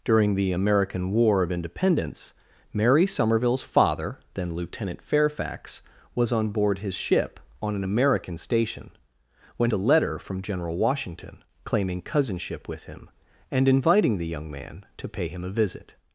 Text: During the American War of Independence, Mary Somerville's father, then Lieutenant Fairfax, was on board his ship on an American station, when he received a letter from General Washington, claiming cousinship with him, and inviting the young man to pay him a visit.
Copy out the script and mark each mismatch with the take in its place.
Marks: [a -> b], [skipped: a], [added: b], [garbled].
During the American War of Independence, Mary Somerville's father, then Lieutenant Fairfax, was on board his ship on an American station, when [skipped: he received] a letter from General Washington, claiming cousinship with him, and inviting the young man to pay him a visit.